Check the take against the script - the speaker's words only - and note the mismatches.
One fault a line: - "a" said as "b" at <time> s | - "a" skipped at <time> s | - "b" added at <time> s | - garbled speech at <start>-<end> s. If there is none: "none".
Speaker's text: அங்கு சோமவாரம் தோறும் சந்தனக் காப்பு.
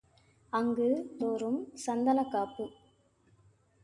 - "சோமவாரம்" skipped at 0.9 s